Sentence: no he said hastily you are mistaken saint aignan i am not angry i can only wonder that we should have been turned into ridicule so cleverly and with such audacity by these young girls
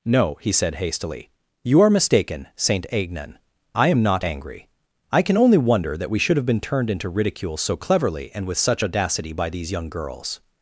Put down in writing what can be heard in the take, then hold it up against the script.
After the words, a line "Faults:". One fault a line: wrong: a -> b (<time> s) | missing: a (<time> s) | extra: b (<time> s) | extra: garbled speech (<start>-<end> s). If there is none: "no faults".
no he said hastily you are mistaken saint aignan i am not angry i can only wonder that we should have been turned into ridicule so cleverly and with such audacity by these young girls
Faults:
no faults